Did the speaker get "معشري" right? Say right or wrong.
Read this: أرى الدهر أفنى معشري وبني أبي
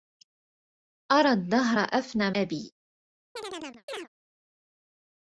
wrong